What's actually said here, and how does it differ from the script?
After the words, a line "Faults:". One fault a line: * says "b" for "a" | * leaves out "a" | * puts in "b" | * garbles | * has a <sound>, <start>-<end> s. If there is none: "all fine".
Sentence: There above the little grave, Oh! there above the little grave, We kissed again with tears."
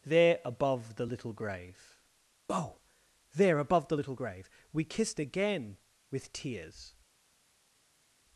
There above the little grave, Oh! there above the little grave, We kissed again with tears."
Faults:
all fine